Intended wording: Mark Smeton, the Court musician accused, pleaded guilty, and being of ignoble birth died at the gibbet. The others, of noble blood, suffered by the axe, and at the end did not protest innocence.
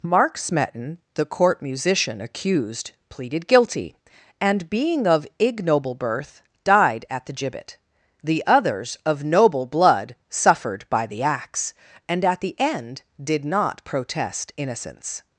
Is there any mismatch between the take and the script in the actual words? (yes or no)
no